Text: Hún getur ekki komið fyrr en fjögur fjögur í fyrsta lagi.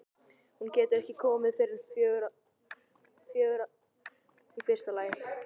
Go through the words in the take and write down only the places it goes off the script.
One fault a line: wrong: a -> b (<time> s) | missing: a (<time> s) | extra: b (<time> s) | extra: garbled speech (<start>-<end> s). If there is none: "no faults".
no faults